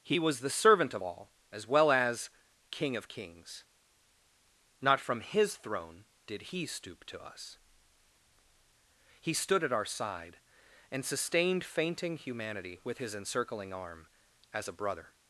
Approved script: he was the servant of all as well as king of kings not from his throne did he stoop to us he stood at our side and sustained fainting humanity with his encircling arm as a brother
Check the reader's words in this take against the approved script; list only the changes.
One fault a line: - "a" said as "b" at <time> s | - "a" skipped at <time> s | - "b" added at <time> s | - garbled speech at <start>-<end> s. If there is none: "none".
none